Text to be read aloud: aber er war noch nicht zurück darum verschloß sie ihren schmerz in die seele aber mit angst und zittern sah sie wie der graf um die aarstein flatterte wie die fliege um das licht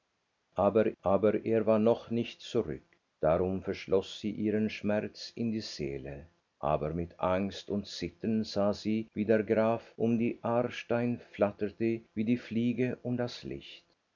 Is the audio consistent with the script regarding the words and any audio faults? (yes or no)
no